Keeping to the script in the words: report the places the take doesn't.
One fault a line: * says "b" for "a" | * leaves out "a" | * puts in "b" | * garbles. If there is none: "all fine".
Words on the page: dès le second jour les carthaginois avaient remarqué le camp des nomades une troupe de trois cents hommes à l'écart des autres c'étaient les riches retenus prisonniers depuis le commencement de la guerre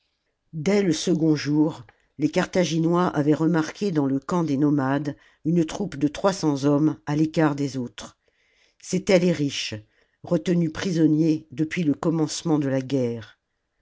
* puts in "dans"